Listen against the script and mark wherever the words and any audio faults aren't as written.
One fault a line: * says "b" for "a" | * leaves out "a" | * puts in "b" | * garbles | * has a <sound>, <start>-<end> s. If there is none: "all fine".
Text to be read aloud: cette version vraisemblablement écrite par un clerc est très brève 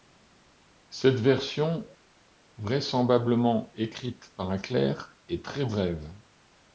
all fine